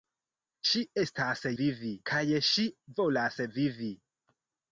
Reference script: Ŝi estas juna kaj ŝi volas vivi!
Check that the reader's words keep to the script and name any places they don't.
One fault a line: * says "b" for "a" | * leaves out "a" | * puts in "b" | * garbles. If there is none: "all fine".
* says "vivi" for "juna"